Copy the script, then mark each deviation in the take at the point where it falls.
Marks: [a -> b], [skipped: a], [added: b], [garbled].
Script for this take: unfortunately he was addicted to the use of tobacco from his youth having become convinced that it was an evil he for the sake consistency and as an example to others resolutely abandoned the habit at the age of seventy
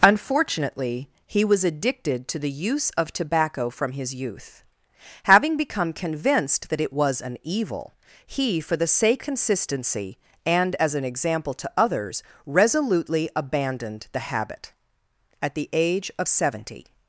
unfortunately he was addicted to the use of tobacco from his youth having become convinced that it was an evil he for the sake consistency and as an example to others resolutely abandoned the habit at the age of seventy